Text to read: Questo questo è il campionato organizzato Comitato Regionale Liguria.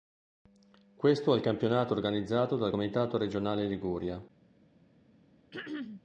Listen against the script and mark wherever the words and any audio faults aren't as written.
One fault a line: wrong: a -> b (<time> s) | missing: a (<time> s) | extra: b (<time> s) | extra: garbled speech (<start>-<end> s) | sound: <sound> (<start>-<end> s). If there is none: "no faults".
missing: questo (1.3 s)
extra: dal (2.5 s)
sound: throat clearing (5.5-6.0 s)